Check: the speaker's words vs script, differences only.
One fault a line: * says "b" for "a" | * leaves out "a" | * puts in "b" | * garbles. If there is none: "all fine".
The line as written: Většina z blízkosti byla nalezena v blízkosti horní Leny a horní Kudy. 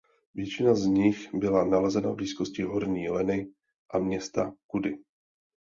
* says "nich" for "blízkosti"
* says "města" for "horní"